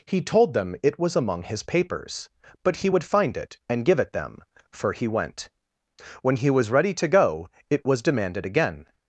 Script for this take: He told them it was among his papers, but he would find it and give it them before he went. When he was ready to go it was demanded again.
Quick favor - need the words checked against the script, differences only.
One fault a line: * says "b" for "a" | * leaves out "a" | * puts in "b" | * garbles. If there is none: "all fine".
* says "for" for "before"